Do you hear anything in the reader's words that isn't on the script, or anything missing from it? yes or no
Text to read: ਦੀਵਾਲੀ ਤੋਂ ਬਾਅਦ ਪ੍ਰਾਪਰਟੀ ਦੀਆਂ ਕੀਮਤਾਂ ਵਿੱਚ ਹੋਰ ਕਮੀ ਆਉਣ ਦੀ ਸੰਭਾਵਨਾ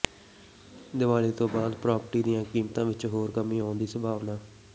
no